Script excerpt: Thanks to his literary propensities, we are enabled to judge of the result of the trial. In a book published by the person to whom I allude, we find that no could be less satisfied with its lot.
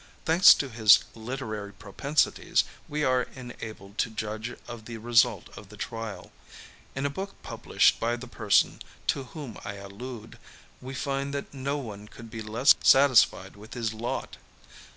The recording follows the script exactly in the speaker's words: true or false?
false